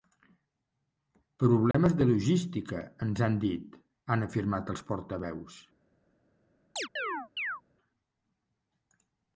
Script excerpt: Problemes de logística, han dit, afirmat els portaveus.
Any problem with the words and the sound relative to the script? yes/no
yes